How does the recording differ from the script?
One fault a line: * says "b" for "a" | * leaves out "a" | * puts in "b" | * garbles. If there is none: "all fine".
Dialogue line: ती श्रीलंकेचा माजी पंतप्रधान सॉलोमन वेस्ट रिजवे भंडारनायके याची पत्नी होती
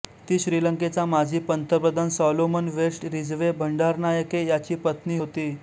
all fine